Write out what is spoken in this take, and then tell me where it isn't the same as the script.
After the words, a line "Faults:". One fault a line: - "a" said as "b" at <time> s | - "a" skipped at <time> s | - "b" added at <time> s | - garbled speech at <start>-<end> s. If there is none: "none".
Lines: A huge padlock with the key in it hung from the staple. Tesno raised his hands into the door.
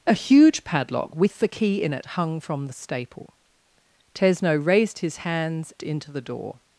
A huge padlock with the key in it hung from the staple. Tesno raised his hands into the door.
Faults:
none